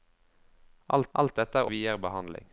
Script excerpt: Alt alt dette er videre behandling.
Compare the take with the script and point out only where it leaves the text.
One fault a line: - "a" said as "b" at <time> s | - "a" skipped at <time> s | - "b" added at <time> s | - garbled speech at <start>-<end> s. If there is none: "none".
none